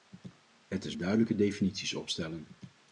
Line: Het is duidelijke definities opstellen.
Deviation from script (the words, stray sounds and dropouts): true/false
false